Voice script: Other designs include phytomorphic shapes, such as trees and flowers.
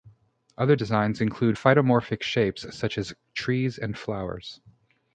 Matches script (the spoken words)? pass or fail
pass